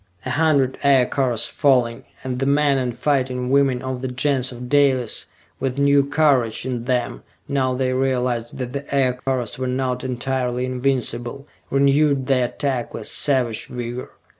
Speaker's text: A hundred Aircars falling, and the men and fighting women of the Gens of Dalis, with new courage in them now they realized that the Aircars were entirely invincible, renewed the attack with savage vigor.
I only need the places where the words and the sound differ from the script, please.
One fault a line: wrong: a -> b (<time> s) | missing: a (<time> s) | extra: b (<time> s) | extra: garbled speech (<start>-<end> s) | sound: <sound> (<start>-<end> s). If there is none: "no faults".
sound: dropout (9.2-9.3 s)
extra: not (9.7 s)